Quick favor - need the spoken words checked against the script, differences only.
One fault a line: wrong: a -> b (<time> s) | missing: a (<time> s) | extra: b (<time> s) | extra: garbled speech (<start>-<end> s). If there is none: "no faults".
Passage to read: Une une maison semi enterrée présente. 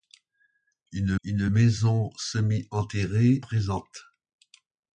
no faults